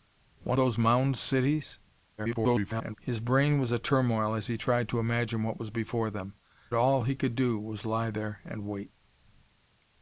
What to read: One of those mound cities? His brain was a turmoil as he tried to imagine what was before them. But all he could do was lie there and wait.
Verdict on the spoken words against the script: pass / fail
fail